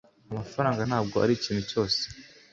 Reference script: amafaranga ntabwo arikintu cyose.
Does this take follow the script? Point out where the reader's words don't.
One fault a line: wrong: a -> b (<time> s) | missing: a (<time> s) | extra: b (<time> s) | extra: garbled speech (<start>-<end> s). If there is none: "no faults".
no faults